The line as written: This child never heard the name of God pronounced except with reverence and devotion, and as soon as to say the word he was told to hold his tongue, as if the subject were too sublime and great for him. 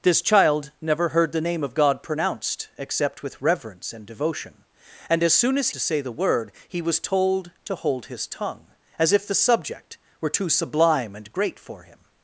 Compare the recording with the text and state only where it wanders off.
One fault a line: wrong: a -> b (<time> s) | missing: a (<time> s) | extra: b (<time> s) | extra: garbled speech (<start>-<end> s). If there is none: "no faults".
no faults